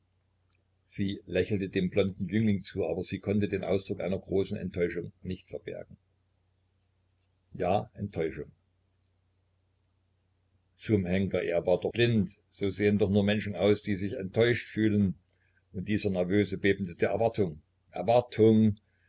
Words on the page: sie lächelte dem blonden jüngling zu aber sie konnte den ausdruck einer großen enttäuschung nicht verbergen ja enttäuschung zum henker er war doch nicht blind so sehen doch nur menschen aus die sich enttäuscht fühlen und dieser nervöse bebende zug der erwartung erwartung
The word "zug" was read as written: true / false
false